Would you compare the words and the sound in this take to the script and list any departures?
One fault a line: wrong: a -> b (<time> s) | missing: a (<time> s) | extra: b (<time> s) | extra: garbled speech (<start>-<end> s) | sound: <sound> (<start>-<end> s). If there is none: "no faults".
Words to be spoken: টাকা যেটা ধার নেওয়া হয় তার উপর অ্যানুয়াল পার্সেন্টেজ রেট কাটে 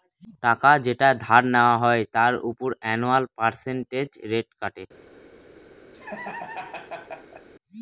sound: laugh (5.9-7.5 s)